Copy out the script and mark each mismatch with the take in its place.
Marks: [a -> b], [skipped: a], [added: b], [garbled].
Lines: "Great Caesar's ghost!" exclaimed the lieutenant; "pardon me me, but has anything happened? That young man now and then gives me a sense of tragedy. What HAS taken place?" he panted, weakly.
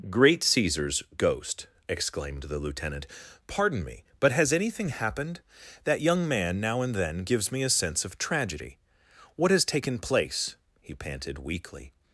"Great Caesar's ghost!" exclaimed the lieutenant; "pardon me [skipped: me,] but has anything happened? That young man now and then gives me a sense of tragedy. What HAS taken place?" he panted, weakly.